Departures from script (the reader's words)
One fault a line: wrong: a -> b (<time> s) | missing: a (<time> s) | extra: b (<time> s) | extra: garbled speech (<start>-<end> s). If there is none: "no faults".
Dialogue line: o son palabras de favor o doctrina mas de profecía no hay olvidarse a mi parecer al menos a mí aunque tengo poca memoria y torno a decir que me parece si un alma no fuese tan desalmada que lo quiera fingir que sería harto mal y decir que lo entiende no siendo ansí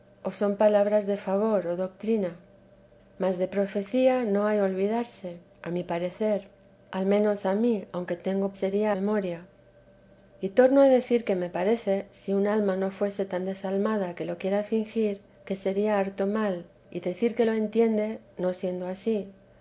wrong: poca -> sería (8.5 s)